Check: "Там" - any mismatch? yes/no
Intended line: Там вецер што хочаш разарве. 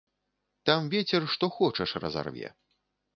no